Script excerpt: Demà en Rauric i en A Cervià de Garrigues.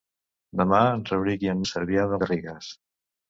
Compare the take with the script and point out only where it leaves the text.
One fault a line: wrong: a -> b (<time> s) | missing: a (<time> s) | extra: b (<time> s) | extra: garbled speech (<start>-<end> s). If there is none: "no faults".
no faults